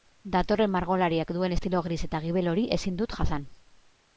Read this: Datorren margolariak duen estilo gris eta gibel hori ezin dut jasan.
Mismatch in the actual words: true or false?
false